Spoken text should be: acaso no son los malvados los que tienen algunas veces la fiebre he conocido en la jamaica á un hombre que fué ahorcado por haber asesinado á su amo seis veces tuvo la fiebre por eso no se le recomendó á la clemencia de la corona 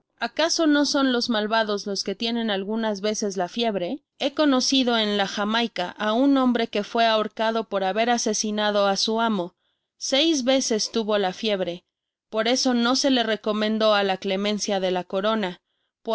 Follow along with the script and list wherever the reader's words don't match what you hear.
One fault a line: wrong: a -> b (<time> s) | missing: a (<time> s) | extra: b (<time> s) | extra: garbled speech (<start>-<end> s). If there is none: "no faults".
no faults